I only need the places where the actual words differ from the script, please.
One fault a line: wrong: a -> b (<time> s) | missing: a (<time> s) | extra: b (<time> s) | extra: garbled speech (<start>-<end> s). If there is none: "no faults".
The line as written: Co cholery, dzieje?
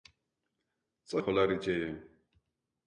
no faults